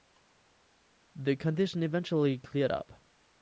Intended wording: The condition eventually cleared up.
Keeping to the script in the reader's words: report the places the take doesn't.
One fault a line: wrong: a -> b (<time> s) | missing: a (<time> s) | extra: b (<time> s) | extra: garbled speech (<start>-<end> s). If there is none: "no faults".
no faults